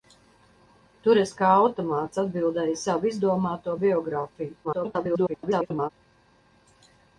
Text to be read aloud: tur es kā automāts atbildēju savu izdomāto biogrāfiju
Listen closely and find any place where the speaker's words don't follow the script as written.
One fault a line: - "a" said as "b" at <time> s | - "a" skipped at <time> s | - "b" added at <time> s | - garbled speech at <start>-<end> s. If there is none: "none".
- garbled speech at 4.6-5.9 s